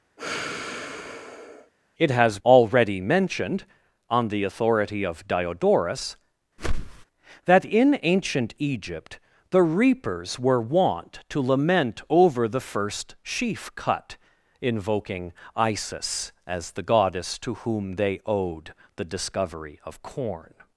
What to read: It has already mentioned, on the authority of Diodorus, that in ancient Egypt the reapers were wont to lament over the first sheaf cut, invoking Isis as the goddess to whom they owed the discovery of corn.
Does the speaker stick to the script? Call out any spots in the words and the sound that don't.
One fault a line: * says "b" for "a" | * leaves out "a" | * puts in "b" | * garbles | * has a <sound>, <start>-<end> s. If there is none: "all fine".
* has a sigh, 0.2-1.7 s
* has a whoosh, 6.6-7.1 s